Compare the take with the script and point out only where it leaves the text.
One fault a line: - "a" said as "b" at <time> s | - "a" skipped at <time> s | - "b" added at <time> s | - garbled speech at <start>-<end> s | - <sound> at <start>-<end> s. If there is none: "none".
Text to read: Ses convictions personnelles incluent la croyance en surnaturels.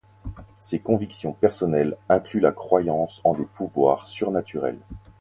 - "des pouvoirs" added at 3.3 s